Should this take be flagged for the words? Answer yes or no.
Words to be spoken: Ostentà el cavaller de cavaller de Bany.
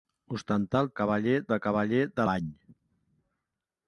no